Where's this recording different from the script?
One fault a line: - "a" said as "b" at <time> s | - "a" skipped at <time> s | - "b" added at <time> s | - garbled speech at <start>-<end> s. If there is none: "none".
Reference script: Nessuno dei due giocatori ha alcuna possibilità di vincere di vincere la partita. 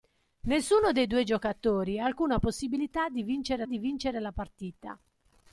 none